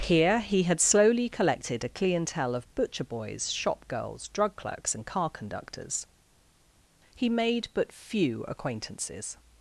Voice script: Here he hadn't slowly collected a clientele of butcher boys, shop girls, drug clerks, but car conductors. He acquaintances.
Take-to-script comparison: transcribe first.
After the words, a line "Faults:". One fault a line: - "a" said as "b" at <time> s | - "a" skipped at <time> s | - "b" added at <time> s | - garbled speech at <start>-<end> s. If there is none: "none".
Here he had slowly collected a clientele of butcher boys, shop girls, drug clerks, and car conductors. He made but few acquaintances.
Faults:
- "hadn't" said as "had" at 0.6 s
- "but" said as "and" at 4.9 s
- "made but few" added at 7.3 s